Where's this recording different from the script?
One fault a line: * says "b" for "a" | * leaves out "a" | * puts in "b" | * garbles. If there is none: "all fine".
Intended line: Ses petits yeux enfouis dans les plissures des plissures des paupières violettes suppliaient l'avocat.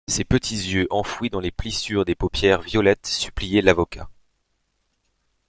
* leaves out "plissures des"